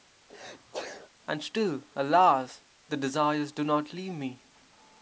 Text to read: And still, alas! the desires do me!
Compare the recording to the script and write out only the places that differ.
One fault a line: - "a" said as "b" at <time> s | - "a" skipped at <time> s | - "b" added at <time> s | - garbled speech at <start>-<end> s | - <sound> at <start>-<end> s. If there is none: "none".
- sneeze at 0.3-1.1 s
- "not leave" added at 3.6 s